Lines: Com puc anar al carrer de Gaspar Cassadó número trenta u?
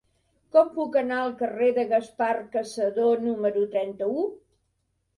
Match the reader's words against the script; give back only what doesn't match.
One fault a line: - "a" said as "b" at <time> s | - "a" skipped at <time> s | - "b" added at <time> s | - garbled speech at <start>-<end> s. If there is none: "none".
none